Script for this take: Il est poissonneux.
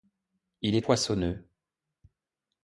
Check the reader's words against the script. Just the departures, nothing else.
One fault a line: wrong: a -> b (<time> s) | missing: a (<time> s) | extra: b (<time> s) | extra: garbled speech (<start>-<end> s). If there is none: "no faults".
no faults